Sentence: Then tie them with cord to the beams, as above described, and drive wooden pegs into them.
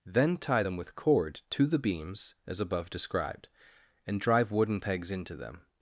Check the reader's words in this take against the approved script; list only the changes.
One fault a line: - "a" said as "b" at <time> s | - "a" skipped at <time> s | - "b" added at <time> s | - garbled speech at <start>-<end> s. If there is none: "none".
none